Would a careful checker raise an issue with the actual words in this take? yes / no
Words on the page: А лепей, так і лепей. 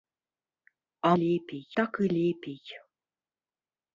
no